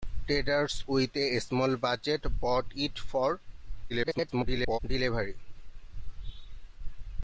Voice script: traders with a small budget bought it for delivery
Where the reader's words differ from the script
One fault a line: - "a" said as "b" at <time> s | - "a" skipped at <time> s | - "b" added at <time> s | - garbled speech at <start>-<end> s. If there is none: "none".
- garbled speech at 3.9-4.8 s